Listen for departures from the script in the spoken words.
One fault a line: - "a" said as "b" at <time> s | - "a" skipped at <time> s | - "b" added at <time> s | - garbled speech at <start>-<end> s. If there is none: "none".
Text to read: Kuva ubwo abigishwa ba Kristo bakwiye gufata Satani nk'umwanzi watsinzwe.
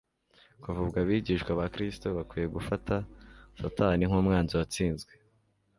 none